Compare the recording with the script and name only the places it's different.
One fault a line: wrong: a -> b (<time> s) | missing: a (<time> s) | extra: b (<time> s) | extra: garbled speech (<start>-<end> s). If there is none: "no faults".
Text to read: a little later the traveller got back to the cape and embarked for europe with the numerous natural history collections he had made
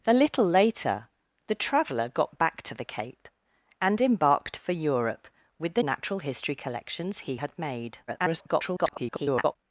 missing: numerous (5.8 s)
extra: garbled speech (8.1-9.6 s)